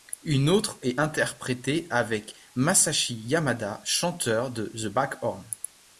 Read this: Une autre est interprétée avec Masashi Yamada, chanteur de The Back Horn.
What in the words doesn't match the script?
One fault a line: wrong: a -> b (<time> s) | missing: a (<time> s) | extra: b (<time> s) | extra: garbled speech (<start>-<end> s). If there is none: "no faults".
no faults